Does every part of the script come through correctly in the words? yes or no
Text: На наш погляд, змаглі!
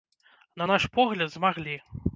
yes